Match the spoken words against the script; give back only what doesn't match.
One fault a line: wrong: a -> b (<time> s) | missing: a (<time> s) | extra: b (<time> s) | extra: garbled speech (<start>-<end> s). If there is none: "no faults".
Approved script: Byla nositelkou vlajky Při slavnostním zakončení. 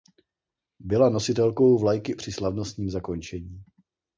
no faults